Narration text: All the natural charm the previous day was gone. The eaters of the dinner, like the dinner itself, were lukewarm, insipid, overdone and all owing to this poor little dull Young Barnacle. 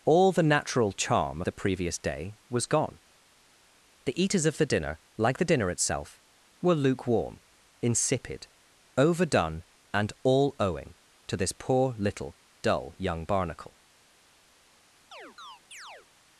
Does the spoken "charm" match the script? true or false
true